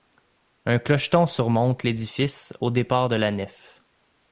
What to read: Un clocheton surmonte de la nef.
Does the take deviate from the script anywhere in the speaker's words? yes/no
yes